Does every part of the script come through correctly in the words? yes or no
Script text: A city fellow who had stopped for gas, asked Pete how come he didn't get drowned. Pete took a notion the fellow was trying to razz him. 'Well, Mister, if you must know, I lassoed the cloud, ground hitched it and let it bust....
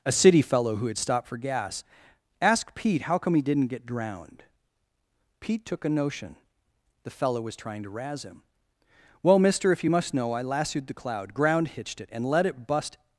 no